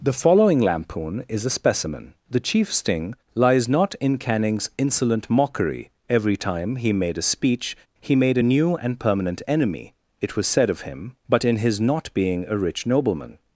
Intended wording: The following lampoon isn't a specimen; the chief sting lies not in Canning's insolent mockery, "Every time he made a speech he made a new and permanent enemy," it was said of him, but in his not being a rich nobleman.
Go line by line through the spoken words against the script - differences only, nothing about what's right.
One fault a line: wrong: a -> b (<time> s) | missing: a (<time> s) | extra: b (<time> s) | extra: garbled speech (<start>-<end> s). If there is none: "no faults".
wrong: isn't -> is (1.3 s)